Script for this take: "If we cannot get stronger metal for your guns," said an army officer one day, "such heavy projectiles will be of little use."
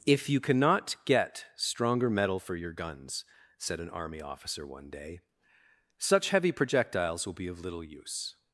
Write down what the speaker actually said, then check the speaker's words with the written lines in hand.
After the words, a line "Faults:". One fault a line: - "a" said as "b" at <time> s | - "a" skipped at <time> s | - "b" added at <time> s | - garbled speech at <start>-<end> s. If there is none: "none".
"If you cannot get stronger metal for your guns," said an army officer one day, "such heavy projectiles will be of little use."
Faults:
- "we" said as "you" at 0.3 s